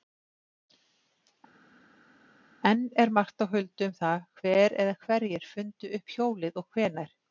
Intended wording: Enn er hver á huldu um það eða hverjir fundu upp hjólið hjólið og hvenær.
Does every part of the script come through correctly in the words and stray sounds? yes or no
no